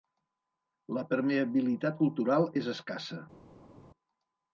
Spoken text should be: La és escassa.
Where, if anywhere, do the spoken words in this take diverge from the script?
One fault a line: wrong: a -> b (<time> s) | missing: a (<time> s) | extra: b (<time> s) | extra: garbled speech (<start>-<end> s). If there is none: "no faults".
extra: permeabilitat cultural (1.1 s)